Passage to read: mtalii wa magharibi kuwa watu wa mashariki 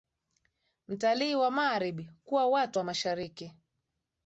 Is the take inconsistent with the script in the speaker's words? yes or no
no